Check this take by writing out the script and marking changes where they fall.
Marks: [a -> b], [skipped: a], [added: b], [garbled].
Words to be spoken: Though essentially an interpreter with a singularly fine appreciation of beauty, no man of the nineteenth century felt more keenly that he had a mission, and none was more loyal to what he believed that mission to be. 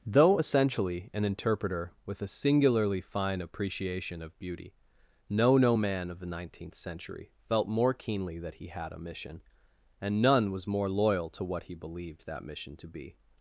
Though essentially an interpreter with a singularly fine appreciation of beauty, no [added: no] man of the nineteenth century felt more keenly that he had a mission, and none was more loyal to what he believed that mission to be.